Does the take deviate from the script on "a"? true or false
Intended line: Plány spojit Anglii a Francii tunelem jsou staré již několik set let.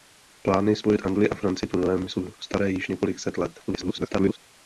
false